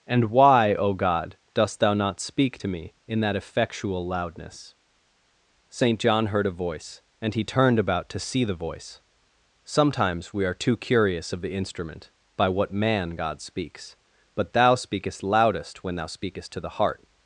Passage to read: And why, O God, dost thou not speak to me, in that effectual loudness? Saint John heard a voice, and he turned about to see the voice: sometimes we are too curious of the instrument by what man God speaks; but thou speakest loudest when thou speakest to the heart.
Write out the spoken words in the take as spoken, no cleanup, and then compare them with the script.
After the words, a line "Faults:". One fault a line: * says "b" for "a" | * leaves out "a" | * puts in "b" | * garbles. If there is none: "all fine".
And why, O God, dost thou not speak to me, in that effectual loudness? Saint John heard a voice, and he turned about to see the voice: sometimes we are too curious of the instrument by what man God speaks; but thou speakest loudest when thou speakest to the heart.
Faults:
all fine